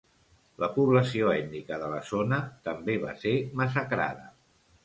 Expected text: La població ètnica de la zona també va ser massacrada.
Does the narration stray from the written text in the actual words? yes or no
no